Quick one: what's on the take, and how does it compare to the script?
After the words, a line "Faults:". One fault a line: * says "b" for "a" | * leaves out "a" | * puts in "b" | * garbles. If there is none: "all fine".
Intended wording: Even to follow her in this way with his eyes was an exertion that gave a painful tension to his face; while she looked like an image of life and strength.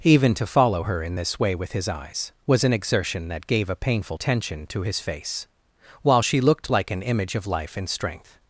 Even to follow her in this way with his eyes was an exertion that gave a painful tension to his face; while she looked like an image of life and strength.
Faults:
all fine